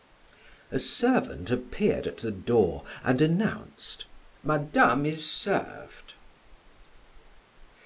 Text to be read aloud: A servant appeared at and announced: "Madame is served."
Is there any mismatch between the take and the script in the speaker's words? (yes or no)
yes